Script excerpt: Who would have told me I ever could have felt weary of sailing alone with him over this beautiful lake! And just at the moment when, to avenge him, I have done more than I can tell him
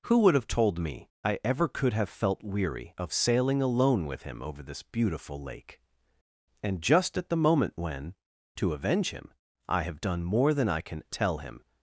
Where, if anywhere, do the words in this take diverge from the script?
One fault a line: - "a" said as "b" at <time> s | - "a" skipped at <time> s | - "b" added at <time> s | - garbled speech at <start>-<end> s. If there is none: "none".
none